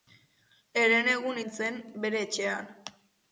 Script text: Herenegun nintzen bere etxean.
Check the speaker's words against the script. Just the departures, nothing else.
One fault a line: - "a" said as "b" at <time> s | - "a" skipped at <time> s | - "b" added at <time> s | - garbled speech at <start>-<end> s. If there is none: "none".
none